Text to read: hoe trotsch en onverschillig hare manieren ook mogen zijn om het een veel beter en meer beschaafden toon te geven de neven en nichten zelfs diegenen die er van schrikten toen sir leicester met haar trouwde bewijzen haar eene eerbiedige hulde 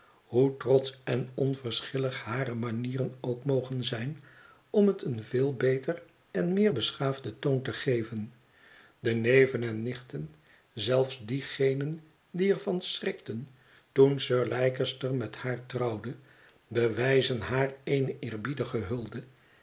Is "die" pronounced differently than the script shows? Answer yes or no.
no